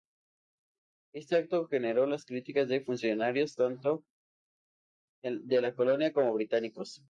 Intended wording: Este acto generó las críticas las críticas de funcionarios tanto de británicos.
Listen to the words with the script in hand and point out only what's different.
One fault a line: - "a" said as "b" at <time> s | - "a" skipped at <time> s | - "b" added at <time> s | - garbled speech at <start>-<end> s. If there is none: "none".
- "las críticas" skipped at 2.7 s
- "la colonia como" added at 5.6 s